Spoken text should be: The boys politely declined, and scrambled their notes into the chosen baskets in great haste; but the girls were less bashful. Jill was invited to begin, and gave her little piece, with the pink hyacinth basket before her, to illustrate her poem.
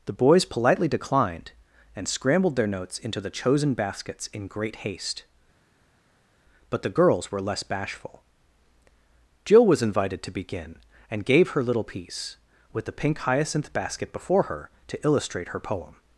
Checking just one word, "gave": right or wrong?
right